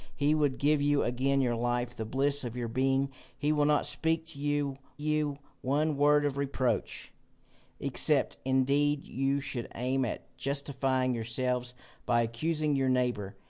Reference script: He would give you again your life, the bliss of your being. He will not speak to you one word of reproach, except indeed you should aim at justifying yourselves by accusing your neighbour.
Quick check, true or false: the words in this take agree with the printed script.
false